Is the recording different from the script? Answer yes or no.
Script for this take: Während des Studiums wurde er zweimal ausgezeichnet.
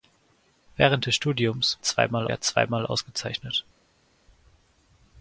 yes